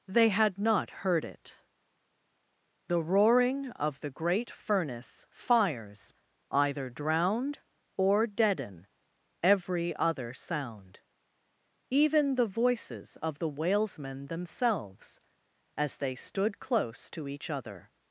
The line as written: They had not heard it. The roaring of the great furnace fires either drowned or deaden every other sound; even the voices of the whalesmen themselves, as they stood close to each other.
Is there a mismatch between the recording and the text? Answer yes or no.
no